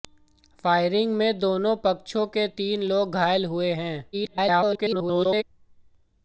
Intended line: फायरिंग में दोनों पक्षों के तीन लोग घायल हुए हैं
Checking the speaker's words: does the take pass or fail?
fail